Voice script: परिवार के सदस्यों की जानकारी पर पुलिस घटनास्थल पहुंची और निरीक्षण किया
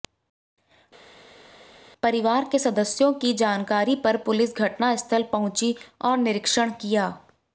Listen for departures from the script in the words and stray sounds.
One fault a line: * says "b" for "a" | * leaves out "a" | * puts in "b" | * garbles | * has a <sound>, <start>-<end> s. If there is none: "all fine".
all fine